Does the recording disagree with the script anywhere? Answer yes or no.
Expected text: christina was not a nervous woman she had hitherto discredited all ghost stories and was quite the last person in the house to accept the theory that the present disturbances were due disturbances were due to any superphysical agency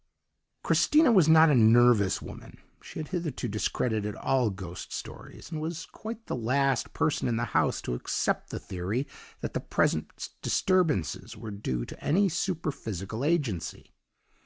yes